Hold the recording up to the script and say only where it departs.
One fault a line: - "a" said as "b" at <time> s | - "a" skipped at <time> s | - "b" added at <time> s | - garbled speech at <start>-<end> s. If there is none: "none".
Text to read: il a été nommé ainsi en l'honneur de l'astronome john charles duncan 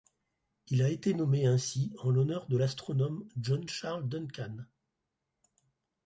none